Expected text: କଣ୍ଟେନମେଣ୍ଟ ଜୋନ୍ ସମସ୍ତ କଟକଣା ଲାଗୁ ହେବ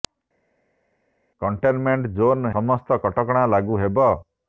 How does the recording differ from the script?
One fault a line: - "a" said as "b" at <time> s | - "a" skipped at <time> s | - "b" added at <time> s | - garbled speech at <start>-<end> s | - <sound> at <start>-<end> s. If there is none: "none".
none